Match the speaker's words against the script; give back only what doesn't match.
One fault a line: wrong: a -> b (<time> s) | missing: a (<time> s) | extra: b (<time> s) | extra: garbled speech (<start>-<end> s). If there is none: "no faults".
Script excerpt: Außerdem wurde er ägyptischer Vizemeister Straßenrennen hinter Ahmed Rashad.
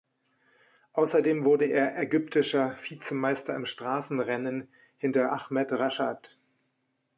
extra: im (3.5 s)